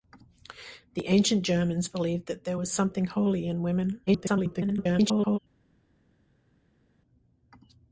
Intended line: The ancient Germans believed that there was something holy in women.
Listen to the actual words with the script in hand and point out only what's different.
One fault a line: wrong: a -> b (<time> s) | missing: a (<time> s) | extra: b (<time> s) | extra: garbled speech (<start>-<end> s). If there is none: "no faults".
extra: garbled speech (4.1-5.4 s)